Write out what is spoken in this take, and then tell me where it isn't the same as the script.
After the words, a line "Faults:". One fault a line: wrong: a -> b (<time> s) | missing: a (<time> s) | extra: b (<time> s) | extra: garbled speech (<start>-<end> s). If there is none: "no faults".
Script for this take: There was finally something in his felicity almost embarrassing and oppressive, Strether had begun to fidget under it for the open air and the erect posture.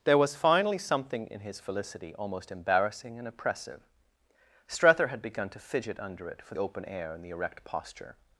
There was finally something in his felicity almost embarrassing and oppressive, Strether had begun to fidget under it for open air and the erect posture.
Faults:
missing: the (6.5 s)